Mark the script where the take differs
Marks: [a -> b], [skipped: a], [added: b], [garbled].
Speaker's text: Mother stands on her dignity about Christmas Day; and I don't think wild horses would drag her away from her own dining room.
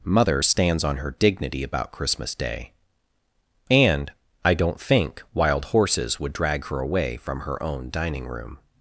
Mother stands on her dignity about Christmas Day; and I don't think wild horses would drag her away from her own dining room.